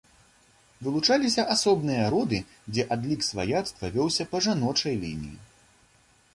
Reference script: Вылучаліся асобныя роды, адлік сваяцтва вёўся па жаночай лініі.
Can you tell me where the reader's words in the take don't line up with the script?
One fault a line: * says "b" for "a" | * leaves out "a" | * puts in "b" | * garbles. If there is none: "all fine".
* puts in "дзе"